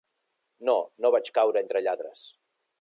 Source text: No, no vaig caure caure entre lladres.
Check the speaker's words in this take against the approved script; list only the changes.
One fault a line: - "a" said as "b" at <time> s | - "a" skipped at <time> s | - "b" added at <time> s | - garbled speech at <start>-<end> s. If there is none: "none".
- "caure" skipped at 1.6 s